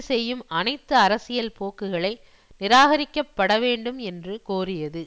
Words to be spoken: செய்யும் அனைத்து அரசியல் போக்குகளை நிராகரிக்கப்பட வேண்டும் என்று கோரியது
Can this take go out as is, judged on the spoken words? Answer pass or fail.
pass